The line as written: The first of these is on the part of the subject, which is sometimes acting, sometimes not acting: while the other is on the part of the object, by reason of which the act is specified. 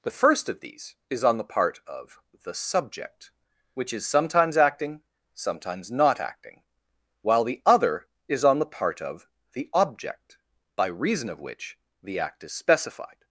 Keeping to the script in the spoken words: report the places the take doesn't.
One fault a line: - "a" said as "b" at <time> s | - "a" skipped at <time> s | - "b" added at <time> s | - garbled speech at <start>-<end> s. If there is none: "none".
none